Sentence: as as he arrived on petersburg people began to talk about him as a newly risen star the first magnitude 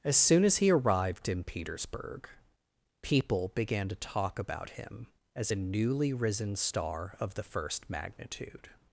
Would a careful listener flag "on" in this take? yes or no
yes